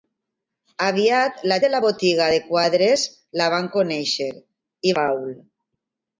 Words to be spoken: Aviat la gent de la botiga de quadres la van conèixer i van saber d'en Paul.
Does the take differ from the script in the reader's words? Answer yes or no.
yes